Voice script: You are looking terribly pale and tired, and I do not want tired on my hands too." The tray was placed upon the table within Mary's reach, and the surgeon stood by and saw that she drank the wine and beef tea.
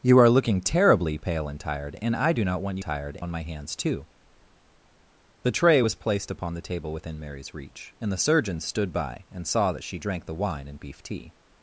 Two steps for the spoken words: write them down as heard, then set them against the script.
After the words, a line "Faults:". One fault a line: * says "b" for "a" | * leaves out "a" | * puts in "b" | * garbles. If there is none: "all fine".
You are looking terribly pale and tired, and I do not want tired on my hands too." The tray was placed upon the table within Mary's reach, and the surgeon stood by and saw that she drank the wine and beef tea.
Faults:
all fine